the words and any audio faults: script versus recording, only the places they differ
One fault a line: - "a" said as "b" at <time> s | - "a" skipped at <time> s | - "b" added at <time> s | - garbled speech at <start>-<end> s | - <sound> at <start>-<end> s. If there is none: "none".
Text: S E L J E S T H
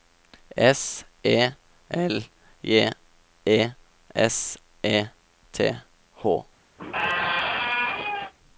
- "E" added at 4.8 s
- squeak at 6.8-8.3 s